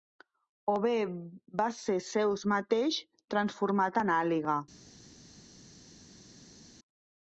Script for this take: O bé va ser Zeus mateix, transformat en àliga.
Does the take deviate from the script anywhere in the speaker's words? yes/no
no